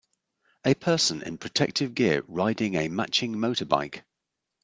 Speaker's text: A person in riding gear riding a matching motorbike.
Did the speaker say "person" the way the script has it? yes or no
yes